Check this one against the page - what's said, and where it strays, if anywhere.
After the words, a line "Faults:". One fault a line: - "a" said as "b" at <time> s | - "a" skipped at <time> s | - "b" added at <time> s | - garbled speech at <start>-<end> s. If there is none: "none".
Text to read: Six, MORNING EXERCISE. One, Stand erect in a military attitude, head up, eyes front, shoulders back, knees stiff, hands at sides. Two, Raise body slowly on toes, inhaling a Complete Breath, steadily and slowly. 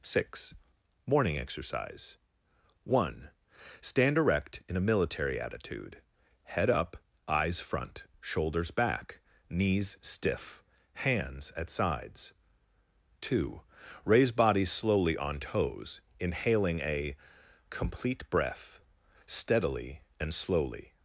Six, MORNING EXERCISE. One, Stand erect in a military attitude, head up, eyes front, shoulders back, knees stiff, hands at sides. Two, Raise body slowly on toes, inhaling a Complete Breath, steadily and slowly.
Faults:
none